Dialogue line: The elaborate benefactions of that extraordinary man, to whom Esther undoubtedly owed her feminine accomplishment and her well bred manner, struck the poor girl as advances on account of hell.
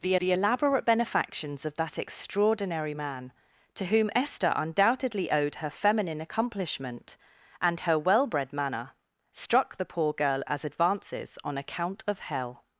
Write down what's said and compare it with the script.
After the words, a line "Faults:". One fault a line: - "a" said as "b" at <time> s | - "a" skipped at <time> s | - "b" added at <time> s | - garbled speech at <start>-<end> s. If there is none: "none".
The the elaborate benefactions of that extraordinary man, to whom Esther undoubtedly owed her feminine accomplishment and her well bred manner, struck the poor girl as advances on account of hell.
Faults:
- "the" added at 0.2 s